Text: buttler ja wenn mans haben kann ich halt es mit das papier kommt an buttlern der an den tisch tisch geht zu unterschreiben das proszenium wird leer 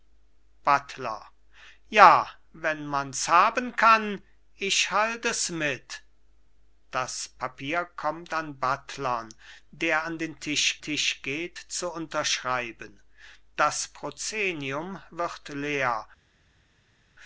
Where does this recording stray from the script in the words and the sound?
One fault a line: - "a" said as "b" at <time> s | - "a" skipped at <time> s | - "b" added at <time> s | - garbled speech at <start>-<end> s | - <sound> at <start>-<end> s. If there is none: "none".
none